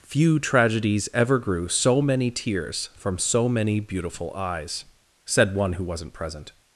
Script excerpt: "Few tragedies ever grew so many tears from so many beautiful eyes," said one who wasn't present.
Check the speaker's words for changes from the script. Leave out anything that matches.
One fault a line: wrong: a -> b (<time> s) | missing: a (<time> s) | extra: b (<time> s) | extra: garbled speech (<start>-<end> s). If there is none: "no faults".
no faults